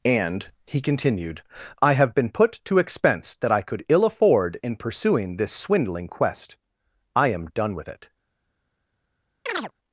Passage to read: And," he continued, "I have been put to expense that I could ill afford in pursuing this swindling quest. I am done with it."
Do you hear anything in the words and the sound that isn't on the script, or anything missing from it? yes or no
yes